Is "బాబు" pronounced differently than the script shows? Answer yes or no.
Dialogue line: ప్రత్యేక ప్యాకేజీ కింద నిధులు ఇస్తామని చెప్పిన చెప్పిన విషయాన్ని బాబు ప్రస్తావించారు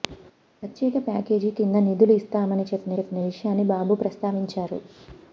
no